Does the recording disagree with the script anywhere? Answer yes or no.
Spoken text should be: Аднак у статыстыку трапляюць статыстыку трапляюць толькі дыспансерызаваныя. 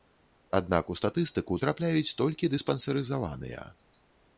yes